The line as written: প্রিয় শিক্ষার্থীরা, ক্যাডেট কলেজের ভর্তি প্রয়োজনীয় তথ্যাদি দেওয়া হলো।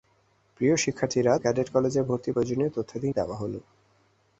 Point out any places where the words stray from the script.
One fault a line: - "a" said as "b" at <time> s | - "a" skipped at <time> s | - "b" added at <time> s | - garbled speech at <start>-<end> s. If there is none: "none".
none